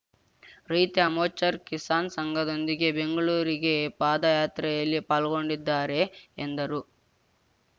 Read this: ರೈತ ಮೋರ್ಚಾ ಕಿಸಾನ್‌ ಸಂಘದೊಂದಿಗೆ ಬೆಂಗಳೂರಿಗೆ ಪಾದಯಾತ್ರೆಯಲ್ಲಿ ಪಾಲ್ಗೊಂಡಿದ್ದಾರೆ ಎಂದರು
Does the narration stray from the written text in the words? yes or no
no